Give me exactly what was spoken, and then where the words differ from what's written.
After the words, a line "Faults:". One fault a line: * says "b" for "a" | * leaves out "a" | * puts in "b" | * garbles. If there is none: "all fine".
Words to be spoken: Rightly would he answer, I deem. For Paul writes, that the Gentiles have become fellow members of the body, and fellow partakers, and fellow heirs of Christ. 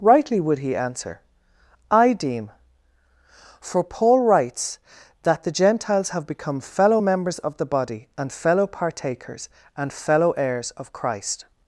Rightly would he answer, I deem. For Paul writes, that the Gentiles have become fellow members of the body, and fellow partakers, and fellow heirs of Christ.
Faults:
all fine